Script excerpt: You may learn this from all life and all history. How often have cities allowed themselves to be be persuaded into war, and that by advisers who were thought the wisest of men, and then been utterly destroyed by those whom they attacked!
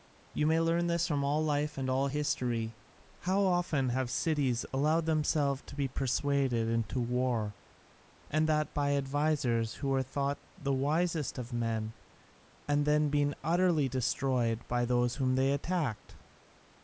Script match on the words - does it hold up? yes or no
no